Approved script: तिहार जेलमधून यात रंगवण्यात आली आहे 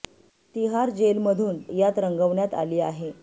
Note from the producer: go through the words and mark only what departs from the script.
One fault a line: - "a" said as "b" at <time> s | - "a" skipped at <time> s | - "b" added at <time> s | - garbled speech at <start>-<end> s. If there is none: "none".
none